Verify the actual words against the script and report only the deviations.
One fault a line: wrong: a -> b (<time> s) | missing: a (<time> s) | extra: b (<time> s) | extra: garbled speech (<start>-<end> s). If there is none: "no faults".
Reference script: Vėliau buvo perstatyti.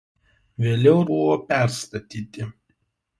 no faults